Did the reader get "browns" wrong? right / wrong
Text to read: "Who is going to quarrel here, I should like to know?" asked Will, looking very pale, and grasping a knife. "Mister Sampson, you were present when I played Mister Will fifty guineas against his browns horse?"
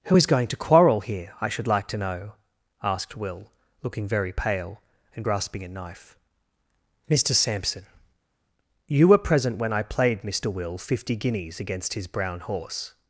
wrong